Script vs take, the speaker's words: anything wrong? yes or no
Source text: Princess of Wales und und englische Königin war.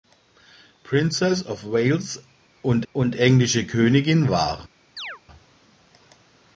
no